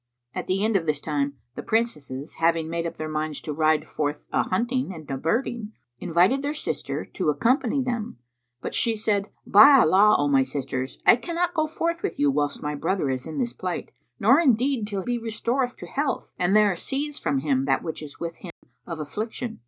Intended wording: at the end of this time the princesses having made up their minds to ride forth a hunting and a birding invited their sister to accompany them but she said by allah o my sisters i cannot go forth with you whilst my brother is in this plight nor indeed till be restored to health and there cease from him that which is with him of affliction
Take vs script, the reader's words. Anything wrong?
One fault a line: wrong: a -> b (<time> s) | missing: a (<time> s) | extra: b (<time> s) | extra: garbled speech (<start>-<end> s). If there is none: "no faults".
no faults